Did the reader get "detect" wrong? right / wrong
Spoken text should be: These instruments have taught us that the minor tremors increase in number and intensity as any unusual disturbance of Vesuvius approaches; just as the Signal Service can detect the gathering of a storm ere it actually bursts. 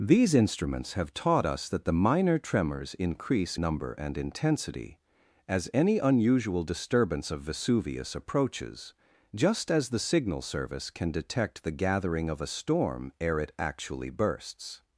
right